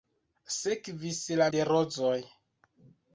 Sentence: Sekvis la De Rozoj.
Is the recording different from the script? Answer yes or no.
no